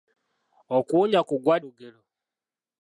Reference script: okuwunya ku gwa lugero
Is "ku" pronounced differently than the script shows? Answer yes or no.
no